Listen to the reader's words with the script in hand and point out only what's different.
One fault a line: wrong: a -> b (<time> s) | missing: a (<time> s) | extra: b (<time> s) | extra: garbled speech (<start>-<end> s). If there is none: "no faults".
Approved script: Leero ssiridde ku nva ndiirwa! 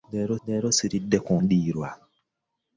extra: leero (0.5 s)
missing: nva (1.3 s)